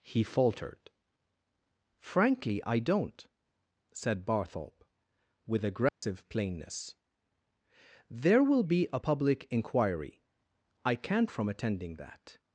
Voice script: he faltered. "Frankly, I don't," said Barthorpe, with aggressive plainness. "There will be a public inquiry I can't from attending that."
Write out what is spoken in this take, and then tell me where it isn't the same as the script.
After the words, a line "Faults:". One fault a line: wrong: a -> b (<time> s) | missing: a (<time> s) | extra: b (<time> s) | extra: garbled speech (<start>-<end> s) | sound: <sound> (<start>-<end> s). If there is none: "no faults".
he faltered. "Frankly, I don't," said Barthorpe, with aggressive plainness. "There will be a public inquiry I can't from attending that."
Faults:
sound: dropout (5.9-6.0 s)